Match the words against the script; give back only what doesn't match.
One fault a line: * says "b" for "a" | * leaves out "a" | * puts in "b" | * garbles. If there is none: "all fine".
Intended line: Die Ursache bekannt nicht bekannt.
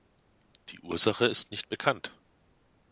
* says "ist" for "bekannt"